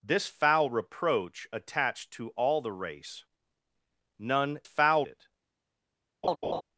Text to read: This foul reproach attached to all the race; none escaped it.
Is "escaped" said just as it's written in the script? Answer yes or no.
no